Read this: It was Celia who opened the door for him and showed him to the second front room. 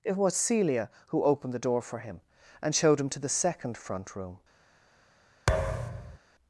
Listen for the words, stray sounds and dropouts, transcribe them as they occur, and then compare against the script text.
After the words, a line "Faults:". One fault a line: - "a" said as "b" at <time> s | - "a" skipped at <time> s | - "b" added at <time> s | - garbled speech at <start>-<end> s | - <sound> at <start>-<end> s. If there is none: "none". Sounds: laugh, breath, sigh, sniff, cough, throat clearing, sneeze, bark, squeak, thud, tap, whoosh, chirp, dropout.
It was Celia who opened the door for him and showed him to the second front room.
Faults:
- thud at 5.5-6.2 s